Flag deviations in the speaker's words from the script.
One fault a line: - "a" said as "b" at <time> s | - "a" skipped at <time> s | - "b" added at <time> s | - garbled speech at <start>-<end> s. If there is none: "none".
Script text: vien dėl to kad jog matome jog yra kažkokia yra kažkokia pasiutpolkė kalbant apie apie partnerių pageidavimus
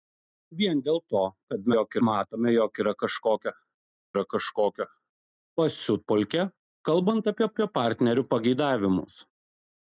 none